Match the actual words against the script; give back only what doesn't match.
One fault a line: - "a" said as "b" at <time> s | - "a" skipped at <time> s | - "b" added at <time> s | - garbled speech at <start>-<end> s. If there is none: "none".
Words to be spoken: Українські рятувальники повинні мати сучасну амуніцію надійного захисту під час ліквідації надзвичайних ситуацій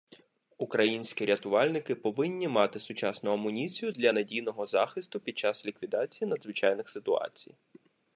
- "для" added at 3.9 s